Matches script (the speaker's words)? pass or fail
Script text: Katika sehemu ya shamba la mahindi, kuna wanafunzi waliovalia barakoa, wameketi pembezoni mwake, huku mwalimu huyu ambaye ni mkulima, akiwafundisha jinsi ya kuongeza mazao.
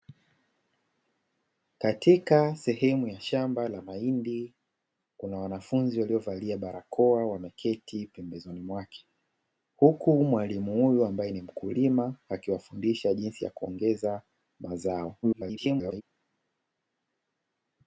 fail